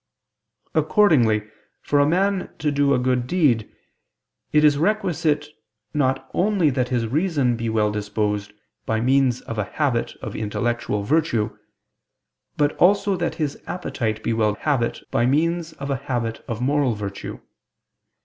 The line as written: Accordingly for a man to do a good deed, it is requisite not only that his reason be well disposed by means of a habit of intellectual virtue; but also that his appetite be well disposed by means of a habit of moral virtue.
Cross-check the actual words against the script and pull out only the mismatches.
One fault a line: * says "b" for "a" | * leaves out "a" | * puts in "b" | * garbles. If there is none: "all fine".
* says "habit" for "disposed"